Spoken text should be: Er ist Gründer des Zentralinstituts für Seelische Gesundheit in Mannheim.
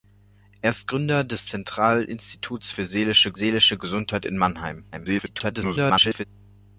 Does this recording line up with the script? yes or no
no